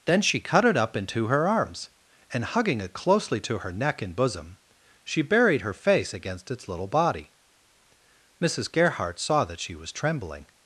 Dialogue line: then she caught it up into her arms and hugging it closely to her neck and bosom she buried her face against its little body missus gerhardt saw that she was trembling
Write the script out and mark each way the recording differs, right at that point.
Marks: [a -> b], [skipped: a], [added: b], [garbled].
then she [caught -> cut] it up into her arms and hugging it closely to her neck and bosom she buried her face against its little body missus gerhardt saw that she was trembling